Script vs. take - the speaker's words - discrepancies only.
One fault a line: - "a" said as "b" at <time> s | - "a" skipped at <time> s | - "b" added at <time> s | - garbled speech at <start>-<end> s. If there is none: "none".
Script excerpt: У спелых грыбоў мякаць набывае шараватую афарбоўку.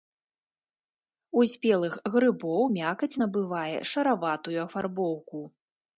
none